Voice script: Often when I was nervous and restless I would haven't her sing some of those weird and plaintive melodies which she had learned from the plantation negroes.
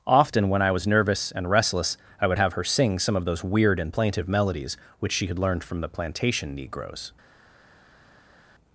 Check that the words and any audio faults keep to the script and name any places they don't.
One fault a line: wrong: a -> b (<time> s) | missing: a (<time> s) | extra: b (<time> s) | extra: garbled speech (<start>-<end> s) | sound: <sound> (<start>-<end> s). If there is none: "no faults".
wrong: haven't -> have (2.4 s)